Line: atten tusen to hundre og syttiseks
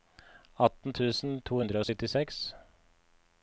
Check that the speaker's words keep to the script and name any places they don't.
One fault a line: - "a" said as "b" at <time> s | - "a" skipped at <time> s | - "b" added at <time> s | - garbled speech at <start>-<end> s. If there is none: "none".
none